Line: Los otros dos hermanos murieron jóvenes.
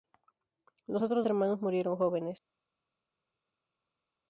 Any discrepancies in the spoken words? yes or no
yes